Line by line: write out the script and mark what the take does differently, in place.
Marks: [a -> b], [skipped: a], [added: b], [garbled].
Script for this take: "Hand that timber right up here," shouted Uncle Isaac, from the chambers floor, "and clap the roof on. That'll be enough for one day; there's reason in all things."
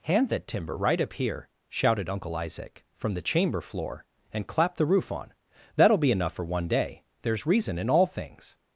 "Hand that timber right up here," shouted Uncle Isaac, from the [chambers -> chamber] floor, "and clap the roof on. That'll be enough for one day; there's reason in all things."